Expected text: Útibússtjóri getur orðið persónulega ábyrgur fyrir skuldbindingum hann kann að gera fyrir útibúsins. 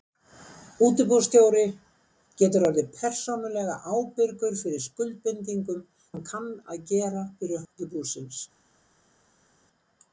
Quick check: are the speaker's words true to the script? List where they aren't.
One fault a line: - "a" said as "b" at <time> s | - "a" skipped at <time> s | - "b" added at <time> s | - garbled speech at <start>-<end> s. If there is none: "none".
none